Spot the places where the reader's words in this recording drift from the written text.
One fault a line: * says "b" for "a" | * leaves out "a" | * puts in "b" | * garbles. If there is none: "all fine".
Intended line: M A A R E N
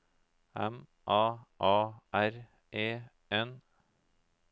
all fine